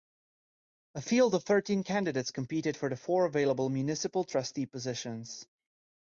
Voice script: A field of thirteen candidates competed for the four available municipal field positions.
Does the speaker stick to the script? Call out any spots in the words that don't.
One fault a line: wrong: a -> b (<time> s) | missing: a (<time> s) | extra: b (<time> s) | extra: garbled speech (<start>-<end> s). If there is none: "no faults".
wrong: field -> trustee (4.2 s)